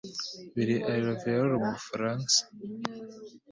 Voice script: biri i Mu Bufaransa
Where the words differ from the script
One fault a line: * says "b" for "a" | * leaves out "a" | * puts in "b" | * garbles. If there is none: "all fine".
* puts in "Louviers"